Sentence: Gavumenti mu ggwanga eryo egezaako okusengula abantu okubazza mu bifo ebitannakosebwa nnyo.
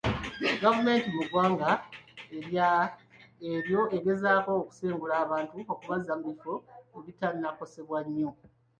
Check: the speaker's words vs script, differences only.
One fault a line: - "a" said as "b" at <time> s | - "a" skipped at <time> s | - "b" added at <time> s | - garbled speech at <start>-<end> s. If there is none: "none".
none